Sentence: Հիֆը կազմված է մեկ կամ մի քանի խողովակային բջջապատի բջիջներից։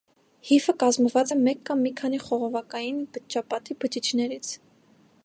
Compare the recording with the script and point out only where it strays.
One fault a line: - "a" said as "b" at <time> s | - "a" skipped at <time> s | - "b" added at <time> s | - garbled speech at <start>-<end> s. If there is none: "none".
none